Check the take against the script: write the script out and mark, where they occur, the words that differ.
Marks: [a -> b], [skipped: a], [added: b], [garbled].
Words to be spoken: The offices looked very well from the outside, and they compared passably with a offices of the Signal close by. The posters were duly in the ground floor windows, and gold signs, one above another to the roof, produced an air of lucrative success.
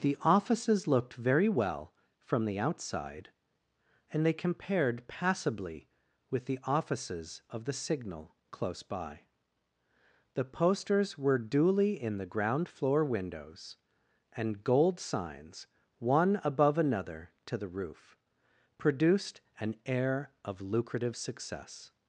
The offices looked very well from the outside, and they compared passably with [a -> the] offices of the Signal close by. The posters were duly in the ground floor windows, and gold signs, one above another to the roof, produced an air of lucrative success.